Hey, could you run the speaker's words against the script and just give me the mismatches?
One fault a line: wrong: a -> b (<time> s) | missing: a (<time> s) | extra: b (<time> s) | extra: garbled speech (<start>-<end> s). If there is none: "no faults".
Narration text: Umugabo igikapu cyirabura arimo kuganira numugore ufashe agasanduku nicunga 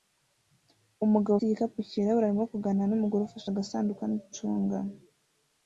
no faults